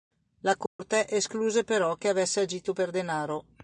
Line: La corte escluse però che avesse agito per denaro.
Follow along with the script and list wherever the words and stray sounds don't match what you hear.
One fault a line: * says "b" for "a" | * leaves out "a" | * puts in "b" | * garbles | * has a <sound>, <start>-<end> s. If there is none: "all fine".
* has a dropout, 0.7-0.8 s